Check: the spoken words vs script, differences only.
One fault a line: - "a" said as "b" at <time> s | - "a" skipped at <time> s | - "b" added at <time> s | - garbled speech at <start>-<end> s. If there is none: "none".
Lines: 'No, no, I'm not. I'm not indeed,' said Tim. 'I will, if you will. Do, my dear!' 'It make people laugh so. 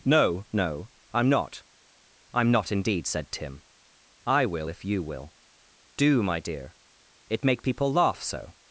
none